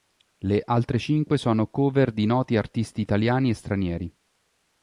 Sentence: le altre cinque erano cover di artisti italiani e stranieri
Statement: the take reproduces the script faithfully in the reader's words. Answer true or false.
false